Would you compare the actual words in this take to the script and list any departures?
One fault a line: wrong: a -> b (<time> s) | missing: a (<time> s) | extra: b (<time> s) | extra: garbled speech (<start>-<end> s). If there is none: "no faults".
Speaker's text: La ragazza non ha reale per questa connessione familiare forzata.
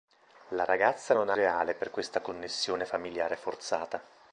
no faults